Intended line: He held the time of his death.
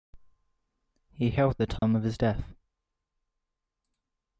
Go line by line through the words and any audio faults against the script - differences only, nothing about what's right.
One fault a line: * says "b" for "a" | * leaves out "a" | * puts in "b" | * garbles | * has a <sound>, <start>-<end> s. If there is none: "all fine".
* has a dropout, 1.8-1.8 s